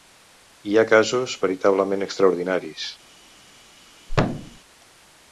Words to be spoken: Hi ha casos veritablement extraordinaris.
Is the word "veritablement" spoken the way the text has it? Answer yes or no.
yes